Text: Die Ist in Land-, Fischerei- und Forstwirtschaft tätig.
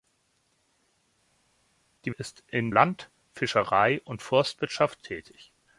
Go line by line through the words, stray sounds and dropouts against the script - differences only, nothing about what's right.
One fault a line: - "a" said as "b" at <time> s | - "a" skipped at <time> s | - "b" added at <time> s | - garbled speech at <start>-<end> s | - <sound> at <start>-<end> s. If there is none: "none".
none